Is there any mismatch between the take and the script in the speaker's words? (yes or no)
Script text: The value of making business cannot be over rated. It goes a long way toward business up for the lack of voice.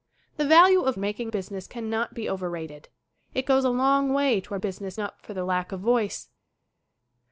no